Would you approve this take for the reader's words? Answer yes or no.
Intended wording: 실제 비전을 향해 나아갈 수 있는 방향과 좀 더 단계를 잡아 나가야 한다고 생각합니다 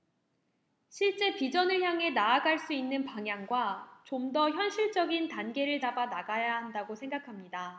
no